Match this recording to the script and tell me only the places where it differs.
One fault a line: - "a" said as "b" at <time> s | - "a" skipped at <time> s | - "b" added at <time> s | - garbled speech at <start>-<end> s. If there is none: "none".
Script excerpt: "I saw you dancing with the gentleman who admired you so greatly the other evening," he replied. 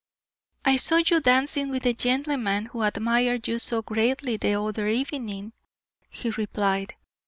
none